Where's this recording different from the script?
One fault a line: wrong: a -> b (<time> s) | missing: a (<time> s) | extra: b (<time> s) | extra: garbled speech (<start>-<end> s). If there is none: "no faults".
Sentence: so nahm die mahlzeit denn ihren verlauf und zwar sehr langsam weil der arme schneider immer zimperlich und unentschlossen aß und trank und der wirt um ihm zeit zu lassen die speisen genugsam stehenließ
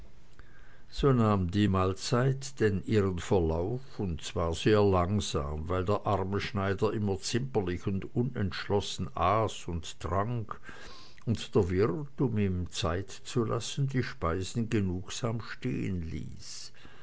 no faults